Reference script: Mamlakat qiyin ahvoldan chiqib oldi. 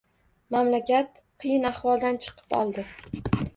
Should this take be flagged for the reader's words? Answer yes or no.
no